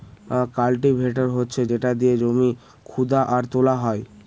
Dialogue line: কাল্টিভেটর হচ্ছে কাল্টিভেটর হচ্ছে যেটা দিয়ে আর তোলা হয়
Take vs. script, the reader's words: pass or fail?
fail